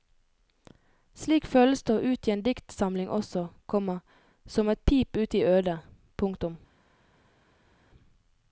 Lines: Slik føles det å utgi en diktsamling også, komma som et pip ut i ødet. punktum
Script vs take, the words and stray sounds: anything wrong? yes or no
no